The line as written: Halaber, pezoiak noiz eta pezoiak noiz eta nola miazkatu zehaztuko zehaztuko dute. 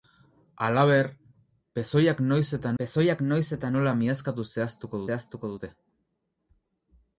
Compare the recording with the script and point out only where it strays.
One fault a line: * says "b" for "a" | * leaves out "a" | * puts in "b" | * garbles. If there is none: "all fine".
all fine